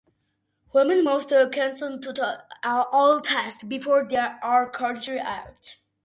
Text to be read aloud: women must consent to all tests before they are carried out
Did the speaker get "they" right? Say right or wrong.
right